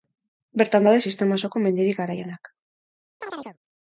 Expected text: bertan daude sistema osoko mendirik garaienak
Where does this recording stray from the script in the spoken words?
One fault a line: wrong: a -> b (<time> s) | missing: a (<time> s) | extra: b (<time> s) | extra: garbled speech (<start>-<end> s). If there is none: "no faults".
no faults